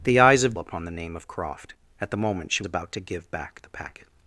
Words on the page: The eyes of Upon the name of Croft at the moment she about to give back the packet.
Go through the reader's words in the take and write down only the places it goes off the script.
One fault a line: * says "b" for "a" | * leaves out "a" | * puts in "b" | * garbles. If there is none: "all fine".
all fine